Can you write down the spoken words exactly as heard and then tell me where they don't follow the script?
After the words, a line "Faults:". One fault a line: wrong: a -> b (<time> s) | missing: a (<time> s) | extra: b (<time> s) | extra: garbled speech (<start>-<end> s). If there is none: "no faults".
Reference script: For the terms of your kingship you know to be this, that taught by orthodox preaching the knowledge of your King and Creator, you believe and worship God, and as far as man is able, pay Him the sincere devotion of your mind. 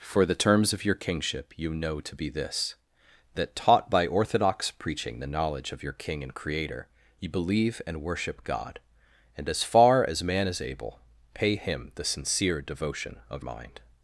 For the terms of your kingship you know to be this, that taught by orthodox preaching the knowledge of your King and Creator, you believe and worship God, and as far as man is able, pay Him the sincere devotion of mind.
Faults:
missing: your (13.4 s)